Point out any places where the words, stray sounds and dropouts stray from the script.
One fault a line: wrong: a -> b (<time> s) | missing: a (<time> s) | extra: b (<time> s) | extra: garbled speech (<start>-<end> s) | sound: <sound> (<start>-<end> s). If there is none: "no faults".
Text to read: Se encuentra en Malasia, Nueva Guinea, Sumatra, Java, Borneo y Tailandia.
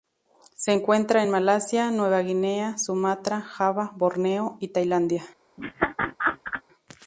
sound: laugh (5.6-6.6 s)